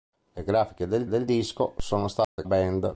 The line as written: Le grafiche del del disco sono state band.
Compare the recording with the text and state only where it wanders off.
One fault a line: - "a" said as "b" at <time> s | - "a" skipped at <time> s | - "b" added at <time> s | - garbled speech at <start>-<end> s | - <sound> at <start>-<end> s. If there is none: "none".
- dropout at 2.2-2.4 s